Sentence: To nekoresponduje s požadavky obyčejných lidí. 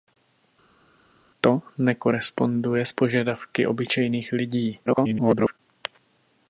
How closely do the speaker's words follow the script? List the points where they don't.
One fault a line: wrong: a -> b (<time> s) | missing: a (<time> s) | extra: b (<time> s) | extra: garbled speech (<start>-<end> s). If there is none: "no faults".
extra: garbled speech (4.9-5.6 s)